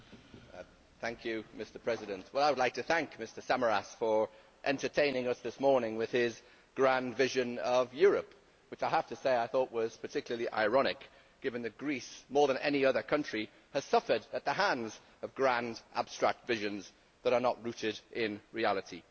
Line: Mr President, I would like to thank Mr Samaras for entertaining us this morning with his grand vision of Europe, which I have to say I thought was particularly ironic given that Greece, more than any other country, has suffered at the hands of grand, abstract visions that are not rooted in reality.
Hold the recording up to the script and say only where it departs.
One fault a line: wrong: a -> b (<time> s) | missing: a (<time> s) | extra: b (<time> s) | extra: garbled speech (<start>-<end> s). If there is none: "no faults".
no faults